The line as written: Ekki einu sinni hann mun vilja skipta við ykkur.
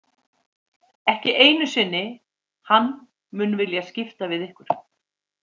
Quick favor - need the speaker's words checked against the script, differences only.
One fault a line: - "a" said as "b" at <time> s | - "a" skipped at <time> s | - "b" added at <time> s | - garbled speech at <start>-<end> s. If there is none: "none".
none